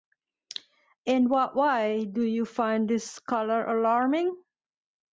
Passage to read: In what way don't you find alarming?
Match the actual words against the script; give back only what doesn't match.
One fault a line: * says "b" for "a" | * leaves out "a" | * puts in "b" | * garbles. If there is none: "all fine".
* says "do" for "don't"
* puts in "this color"